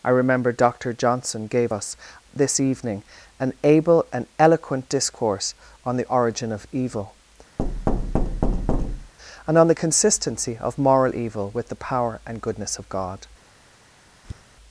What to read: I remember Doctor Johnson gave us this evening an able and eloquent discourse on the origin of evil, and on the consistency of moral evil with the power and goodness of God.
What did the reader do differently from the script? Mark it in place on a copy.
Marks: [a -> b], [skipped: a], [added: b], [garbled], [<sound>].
I remember Doctor Johnson gave us this evening an able and eloquent discourse on the origin of evil, [thud] and on the consistency of moral evil with the power and goodness of God. [tap]